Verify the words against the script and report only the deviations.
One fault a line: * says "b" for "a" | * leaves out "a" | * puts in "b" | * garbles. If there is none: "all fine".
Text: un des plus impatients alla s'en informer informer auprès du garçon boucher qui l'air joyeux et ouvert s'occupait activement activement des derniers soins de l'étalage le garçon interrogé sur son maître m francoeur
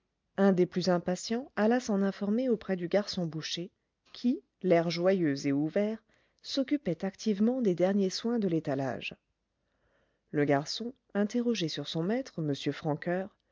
* leaves out "informer"
* leaves out "activement"